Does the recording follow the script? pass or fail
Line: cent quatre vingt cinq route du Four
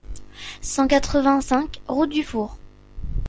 pass